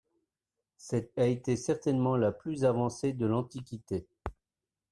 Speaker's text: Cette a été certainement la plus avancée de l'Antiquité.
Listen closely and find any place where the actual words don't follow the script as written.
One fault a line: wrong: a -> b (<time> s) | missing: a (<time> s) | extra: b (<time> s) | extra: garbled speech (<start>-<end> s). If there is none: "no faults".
no faults